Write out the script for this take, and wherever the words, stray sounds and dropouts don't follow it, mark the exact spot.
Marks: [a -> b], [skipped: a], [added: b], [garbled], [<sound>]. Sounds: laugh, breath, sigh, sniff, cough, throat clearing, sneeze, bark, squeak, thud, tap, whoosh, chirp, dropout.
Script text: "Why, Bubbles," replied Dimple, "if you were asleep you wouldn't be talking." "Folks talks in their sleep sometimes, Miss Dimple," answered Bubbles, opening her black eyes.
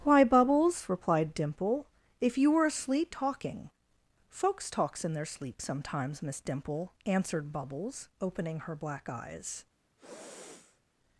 "Why, Bubbles," replied Dimple, "if you were asleep [skipped: you wouldn't be] talking." "Folks talks in their sleep sometimes, Miss Dimple," answered Bubbles, opening her black eyes. [sniff]